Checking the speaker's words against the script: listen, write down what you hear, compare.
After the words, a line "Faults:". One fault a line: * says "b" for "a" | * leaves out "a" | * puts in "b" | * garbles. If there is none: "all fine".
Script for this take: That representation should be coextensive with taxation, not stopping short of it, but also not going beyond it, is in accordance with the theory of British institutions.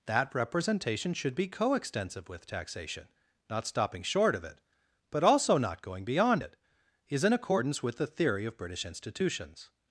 That representation should be coextensive with taxation, not stopping short of it, but also not going beyond it, is in accordance with the theory of British institutions.
Faults:
all fine